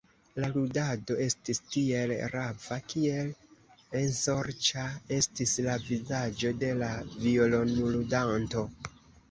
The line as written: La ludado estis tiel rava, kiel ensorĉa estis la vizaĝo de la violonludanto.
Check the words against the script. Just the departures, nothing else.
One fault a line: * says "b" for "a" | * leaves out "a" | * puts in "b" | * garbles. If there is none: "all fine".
all fine